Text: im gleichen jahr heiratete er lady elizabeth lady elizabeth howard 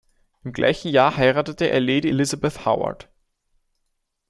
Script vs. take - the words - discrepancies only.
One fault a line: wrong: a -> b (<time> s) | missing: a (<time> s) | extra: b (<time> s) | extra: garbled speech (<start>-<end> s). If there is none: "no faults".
missing: lady elizabeth (2.7 s)